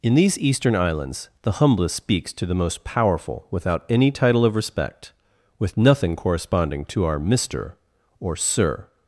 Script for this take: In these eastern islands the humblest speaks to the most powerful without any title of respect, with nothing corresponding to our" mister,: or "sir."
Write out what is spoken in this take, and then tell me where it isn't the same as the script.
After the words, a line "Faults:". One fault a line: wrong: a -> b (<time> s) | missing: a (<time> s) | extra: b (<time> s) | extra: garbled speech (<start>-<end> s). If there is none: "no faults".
In these eastern islands the humblest speaks to the most powerful without any title of respect, with nothing corresponding to our" mister,: or "sir."
Faults:
no faults